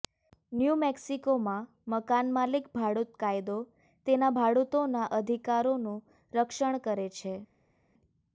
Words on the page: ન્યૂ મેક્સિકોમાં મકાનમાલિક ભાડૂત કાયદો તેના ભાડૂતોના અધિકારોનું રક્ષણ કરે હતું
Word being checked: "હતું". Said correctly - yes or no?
no